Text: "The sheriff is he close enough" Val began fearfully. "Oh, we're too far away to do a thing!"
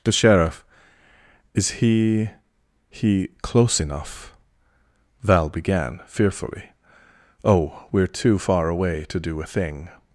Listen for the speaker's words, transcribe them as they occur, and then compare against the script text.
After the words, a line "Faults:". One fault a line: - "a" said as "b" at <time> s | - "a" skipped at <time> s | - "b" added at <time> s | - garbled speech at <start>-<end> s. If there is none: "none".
"The sheriff is he he close enough" Val began fearfully. "Oh, we're too far away to do a thing!"
Faults:
- "he" added at 2.9 s